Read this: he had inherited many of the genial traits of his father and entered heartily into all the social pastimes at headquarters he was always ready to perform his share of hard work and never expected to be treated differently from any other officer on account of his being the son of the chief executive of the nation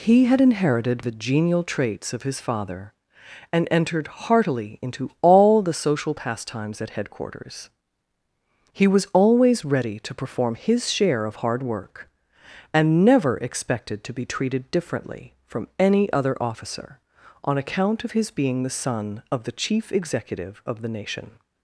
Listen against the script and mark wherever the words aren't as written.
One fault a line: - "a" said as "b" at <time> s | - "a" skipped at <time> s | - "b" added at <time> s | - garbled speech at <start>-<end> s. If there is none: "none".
- "many of" skipped at 1.1 s